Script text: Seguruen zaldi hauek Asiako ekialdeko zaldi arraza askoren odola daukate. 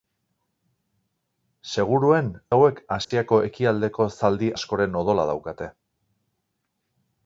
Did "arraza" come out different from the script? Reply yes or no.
yes